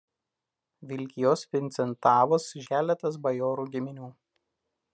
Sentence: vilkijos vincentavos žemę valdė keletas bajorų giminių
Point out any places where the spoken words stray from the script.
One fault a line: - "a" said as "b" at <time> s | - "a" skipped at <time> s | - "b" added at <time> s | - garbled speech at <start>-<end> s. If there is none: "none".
- "žemę valdė" skipped at 2.5 s